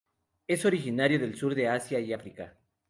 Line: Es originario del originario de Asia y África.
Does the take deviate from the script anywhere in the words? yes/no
yes